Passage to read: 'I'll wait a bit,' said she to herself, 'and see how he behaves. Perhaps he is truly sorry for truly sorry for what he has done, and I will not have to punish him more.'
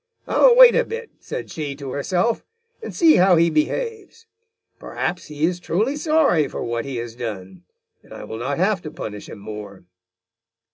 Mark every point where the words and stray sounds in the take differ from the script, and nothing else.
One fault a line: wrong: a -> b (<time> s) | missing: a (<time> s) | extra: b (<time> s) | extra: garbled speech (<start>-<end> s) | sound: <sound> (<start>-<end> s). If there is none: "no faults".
missing: truly sorry for (6.6 s)